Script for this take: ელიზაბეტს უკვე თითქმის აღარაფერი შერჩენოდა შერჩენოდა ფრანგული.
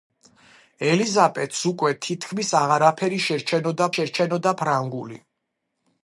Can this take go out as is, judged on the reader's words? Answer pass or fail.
pass